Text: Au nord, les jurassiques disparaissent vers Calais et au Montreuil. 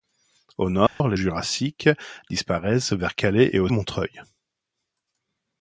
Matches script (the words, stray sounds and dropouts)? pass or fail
fail